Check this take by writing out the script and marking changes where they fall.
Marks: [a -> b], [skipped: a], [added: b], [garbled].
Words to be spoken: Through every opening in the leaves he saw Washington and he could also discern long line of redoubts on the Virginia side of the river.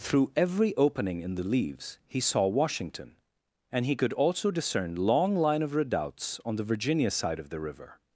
Through every opening in the leaves he saw Washington and he could also discern long line of redoubts on the Virginia side of the river.